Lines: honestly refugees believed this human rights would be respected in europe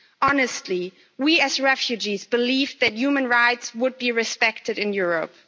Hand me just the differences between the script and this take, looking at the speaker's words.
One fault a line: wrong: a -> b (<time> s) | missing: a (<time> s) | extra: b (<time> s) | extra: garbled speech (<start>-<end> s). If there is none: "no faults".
extra: we as (1.2 s)
wrong: this -> that (2.8 s)